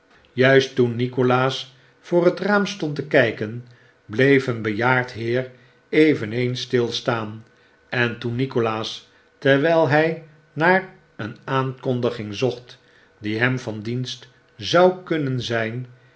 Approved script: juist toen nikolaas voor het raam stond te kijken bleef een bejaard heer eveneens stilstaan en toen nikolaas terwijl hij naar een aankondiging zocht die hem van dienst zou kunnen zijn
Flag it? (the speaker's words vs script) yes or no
no